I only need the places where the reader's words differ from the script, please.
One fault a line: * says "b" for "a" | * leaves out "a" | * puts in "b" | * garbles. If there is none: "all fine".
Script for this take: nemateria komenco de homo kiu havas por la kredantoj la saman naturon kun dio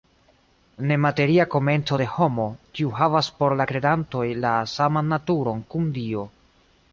all fine